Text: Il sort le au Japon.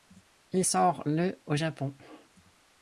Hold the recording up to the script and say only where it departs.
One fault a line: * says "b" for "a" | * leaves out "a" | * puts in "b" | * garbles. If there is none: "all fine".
all fine